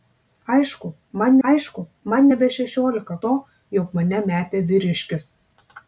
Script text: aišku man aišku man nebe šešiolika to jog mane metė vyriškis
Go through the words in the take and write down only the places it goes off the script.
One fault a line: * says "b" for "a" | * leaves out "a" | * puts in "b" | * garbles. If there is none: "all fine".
all fine